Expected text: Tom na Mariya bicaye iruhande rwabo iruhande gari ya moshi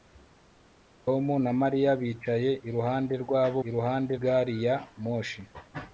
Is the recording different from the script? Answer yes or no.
no